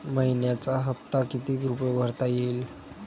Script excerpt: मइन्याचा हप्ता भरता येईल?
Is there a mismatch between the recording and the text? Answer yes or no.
yes